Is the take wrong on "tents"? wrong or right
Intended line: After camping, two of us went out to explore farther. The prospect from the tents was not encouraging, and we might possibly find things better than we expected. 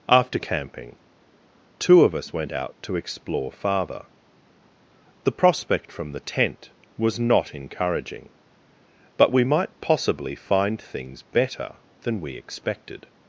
wrong